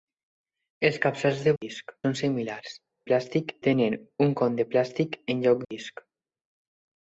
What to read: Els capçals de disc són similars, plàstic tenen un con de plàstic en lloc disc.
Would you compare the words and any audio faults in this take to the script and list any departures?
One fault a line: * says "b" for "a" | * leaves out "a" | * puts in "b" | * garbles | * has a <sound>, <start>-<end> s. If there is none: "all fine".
all fine